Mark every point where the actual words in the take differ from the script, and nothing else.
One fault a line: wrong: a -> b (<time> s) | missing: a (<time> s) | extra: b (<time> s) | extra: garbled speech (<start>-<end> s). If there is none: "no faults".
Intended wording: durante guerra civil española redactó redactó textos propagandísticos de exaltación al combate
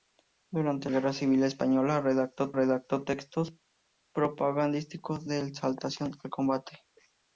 no faults